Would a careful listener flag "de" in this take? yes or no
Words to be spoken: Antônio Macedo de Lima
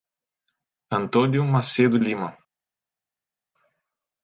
yes